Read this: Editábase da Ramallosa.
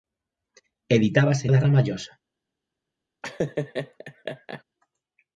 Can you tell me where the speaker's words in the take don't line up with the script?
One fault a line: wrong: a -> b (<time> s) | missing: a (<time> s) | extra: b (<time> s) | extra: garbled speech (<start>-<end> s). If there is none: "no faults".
no faults